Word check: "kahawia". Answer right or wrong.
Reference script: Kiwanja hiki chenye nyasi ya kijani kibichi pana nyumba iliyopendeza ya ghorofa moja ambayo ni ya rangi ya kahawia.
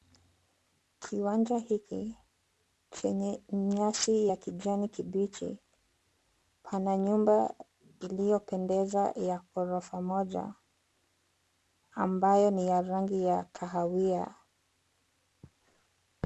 right